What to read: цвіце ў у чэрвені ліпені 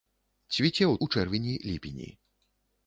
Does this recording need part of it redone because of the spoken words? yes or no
no